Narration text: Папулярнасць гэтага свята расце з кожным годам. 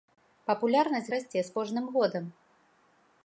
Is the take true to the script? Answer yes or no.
no